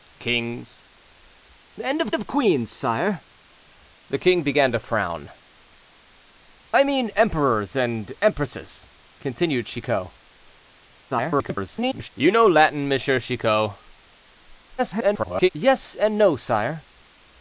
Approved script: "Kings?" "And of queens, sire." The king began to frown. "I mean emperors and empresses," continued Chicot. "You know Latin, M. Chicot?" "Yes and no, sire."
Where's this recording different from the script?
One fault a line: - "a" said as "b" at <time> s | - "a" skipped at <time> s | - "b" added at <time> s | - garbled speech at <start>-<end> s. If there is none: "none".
- "of" added at 2.1 s
- garbled speech at 11.1-12.1 s
- garbled speech at 14.8-15.5 s